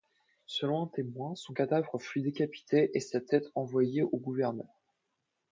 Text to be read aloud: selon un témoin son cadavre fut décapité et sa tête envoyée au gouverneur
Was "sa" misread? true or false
false